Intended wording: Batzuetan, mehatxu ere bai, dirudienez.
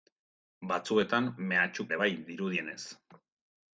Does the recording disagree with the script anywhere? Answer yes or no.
no